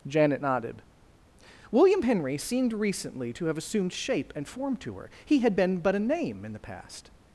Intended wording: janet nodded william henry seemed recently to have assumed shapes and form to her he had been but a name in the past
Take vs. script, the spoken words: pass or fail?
fail